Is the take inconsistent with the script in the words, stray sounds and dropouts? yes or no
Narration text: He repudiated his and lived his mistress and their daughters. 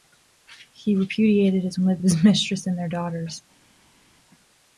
no